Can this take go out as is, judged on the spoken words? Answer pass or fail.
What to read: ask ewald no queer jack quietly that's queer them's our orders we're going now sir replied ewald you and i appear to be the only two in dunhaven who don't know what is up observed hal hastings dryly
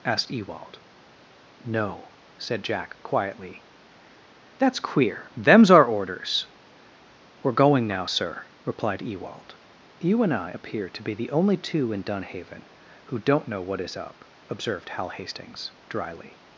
fail